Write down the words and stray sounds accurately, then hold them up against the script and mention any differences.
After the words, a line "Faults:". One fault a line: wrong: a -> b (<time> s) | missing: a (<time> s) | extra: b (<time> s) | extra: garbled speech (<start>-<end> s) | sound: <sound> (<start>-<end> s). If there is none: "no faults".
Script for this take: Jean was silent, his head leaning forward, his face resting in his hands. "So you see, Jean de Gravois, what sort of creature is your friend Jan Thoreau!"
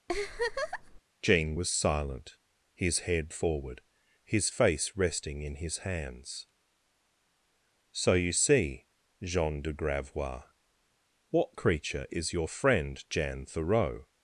Jean was silent, his head forward, his face resting in his hands. "So you see, Jean de Gravois, what creature is your friend Jan Thoreau!"
Faults:
sound: laugh (0.1-1.0 s)
missing: leaning (3.3 s)
missing: sort of (11.6 s)